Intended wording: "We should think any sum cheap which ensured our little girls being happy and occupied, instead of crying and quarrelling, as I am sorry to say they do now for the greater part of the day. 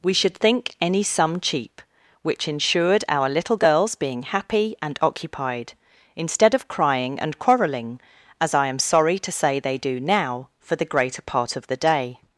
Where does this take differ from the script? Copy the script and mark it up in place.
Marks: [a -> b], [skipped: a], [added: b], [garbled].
"We should think any sum cheap which ensured our little girls being happy and occupied, instead of crying and quarrelling, as I am sorry to say they do now for the greater part of the day.